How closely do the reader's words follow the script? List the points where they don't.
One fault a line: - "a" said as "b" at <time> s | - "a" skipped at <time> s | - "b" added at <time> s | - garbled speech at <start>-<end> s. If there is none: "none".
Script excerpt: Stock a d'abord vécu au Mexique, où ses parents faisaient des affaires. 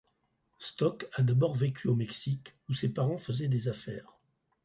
none